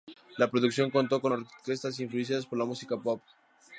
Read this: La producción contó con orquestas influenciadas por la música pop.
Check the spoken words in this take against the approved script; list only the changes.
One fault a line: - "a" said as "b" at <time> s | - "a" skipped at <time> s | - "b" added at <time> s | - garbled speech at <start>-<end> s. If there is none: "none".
none